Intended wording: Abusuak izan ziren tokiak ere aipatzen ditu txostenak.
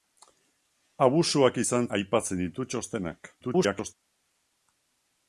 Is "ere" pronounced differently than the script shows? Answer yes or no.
yes